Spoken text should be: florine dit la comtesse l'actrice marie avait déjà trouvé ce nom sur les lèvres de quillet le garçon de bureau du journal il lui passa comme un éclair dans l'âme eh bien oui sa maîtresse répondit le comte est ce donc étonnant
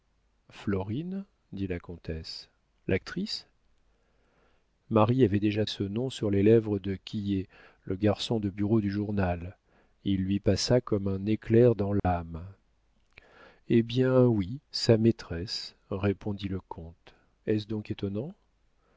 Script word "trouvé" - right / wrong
wrong